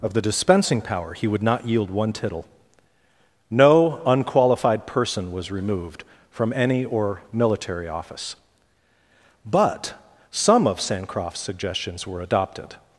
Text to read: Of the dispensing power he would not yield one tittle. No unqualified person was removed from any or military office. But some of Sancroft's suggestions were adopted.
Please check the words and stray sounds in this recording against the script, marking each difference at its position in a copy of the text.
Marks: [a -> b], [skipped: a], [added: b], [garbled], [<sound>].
Of the dispensing power he would not yield one tittle. No unqualified person was removed from any or military office. But some of Sancroft's suggestions were adopted.